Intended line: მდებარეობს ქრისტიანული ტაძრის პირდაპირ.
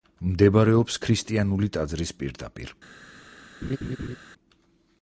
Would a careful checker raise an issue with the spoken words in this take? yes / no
no